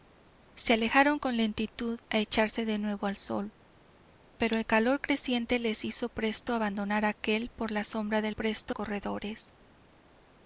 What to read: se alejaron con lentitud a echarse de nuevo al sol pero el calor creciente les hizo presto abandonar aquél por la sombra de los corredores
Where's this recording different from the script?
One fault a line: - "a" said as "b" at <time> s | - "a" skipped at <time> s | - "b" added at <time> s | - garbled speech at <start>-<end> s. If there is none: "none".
- "los" said as "presto" at 8.3 s